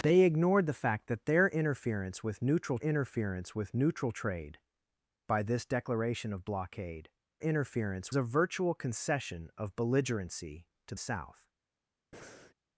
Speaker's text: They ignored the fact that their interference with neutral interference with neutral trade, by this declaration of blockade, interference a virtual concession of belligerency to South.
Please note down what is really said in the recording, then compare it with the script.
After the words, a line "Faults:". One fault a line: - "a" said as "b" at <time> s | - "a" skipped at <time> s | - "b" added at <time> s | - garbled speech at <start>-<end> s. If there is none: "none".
They ignored the fact that their interference with neutral interference with neutral trade, by this declaration of blockade, interference a virtual concession of belligerency to South.
Faults:
none